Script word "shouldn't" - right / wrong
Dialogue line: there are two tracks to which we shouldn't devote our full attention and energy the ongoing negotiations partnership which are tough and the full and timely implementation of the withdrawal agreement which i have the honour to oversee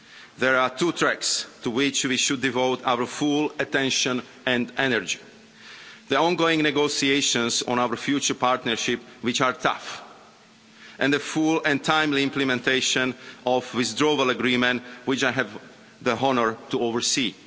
wrong